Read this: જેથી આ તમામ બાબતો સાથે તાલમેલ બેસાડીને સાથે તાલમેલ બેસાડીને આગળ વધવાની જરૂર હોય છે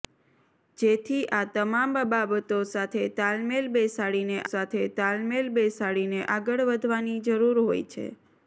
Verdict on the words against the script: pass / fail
pass